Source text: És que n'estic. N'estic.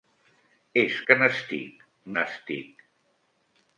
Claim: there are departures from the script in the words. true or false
false